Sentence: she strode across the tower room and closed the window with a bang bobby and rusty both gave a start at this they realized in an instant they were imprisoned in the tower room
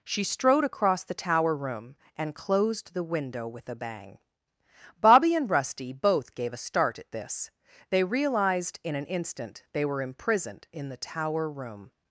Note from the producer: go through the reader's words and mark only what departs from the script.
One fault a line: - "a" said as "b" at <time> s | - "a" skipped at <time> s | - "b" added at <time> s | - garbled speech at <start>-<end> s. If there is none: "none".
none